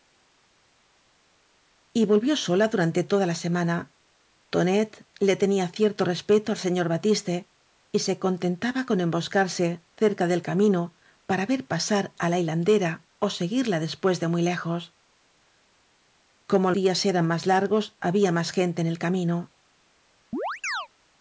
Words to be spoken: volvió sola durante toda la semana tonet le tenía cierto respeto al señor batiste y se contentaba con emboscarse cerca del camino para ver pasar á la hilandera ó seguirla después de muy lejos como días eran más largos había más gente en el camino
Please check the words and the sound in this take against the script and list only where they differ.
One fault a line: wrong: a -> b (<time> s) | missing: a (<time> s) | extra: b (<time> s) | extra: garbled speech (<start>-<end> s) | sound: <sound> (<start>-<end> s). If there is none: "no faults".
sound: chirp (20.3-20.9 s)